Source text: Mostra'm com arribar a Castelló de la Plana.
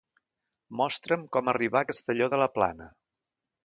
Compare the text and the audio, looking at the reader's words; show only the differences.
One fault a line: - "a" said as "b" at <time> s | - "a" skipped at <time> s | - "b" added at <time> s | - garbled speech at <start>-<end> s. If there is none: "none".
none